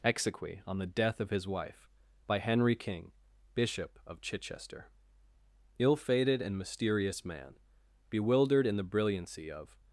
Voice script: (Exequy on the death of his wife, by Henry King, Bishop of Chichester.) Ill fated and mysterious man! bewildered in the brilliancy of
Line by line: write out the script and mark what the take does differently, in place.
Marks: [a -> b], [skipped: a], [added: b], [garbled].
(Exequy on the death of his wife, by Henry King, Bishop of Chichester.) Ill fated and mysterious man! bewildered in the brilliancy of